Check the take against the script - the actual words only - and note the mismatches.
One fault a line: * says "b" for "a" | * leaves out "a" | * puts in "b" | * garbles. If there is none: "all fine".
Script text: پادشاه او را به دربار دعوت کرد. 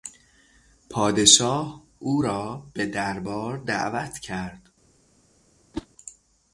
all fine